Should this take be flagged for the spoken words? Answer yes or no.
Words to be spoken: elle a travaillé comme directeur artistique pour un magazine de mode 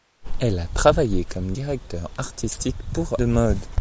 yes